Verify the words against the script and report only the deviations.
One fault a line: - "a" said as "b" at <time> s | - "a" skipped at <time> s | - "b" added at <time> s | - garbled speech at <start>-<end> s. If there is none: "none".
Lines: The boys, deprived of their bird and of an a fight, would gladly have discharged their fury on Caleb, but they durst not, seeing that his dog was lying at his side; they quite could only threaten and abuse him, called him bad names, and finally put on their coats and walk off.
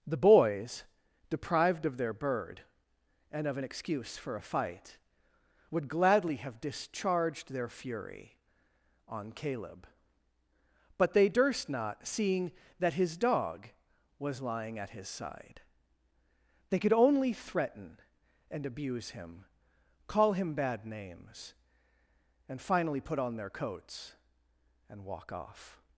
- "excuse for" added at 3.6 s
- "quite" skipped at 16.8 s
- "called" said as "call" at 20.1 s